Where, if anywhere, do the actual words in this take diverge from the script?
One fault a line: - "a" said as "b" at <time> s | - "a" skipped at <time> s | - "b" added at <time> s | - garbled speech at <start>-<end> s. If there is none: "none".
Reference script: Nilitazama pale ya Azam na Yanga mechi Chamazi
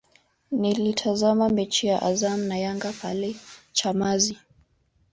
- "pale" said as "mechi" at 1.5 s
- "mechi" said as "pale" at 3.0 s